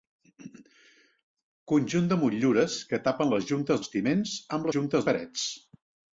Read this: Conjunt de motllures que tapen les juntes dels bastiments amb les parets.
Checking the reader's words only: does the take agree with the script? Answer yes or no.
no